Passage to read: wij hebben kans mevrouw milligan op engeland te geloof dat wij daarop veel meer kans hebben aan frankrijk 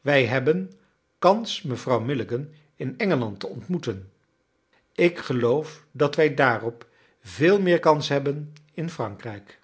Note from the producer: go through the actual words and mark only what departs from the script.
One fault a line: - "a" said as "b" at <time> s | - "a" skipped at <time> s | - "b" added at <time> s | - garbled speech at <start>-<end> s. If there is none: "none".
- "op" said as "in" at 2.8 s
- "ontmoeten ik" added at 3.5 s
- "aan" said as "in" at 8.7 s